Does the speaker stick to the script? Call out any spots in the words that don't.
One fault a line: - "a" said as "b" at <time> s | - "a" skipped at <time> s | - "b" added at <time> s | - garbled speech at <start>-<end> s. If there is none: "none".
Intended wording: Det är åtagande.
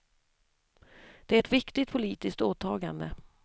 - "ett viktigt politiskt" added at 1.4 s